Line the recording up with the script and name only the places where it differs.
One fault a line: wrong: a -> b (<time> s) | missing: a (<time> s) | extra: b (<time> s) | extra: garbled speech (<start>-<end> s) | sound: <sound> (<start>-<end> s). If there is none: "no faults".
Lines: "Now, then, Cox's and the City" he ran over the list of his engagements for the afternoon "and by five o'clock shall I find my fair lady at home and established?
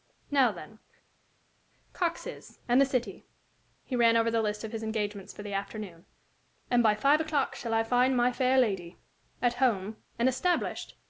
no faults